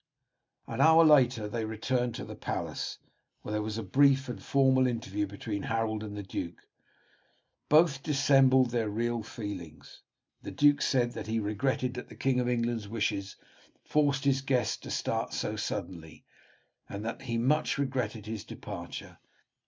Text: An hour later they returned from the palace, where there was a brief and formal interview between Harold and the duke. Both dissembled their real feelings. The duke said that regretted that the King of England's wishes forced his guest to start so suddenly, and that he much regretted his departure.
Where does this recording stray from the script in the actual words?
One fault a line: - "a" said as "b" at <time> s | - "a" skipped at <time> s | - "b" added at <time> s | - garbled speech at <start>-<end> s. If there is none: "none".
- "from" said as "to" at 2.1 s
- "he" added at 11.3 s